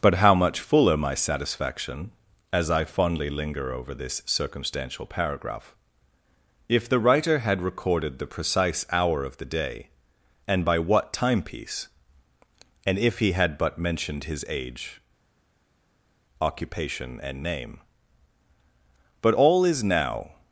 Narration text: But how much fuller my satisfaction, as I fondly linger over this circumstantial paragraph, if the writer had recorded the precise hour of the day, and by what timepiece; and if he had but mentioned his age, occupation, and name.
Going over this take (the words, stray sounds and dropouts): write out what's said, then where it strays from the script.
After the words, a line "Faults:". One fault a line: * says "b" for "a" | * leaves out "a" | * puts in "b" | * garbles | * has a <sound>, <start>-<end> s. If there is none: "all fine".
But how much fuller my satisfaction, as I fondly linger over this circumstantial paragraph, if the writer had recorded the precise hour of the day, and by what timepiece; and if he had but mentioned his age, occupation, and name. But all is now
Faults:
* puts in "But all is now"